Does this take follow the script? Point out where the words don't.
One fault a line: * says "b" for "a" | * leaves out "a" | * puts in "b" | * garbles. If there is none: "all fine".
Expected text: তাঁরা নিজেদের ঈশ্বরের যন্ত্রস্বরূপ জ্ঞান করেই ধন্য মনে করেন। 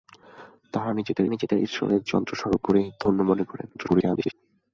* puts in "নিজেদের"
* leaves out "জ্ঞান"
* garbles